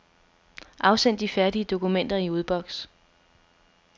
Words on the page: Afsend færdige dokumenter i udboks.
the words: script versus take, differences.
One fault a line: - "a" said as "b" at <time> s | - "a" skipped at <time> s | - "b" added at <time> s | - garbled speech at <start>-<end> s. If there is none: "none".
- "de" added at 1.2 s